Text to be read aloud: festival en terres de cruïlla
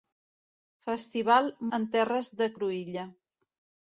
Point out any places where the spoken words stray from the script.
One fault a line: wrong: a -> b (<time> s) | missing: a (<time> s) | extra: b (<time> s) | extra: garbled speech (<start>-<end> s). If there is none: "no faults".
no faults